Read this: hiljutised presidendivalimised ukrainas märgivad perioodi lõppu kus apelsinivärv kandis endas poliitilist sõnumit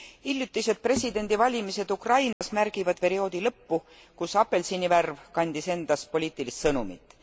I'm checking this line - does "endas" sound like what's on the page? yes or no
yes